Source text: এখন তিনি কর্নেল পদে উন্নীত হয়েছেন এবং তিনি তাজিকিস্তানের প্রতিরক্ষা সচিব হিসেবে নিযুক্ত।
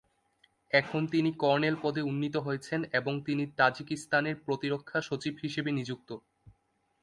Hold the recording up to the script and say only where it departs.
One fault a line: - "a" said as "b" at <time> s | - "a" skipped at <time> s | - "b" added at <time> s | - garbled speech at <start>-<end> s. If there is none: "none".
none